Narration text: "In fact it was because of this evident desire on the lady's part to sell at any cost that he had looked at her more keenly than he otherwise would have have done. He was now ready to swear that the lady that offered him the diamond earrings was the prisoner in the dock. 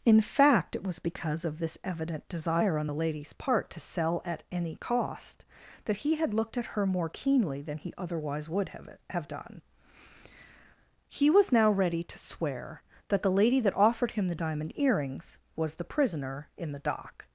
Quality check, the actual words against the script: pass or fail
pass